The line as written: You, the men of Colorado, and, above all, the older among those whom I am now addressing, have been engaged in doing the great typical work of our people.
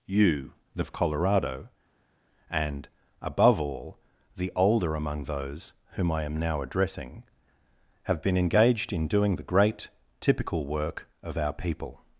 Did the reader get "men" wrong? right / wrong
wrong